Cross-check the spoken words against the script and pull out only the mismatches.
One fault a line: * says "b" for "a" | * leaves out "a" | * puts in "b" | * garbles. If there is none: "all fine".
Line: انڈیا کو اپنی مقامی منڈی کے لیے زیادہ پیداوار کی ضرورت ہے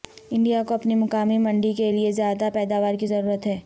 all fine